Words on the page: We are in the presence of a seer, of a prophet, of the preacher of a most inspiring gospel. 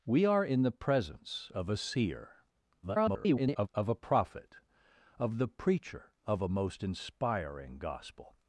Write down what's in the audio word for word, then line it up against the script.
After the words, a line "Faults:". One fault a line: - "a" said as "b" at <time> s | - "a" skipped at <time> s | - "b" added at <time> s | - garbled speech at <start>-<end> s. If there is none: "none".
We are in the presence of a seer, [garbled] of a prophet, of the preacher of a most inspiring gospel.
Faults:
- garbled speech at 2.8-3.7 s